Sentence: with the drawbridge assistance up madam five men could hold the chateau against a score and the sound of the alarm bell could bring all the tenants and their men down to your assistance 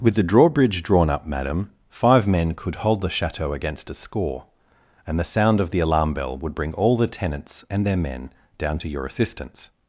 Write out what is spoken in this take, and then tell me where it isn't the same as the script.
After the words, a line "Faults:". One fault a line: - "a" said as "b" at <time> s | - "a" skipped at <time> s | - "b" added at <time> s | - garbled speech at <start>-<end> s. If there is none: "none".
with the drawbridge drawn up madam five men could hold the chateau against a score and the sound of the alarm bell would bring all the tenants and their men down to your assistance
Faults:
- "assistance" said as "drawn" at 0.8 s
- "could" said as "would" at 6.4 s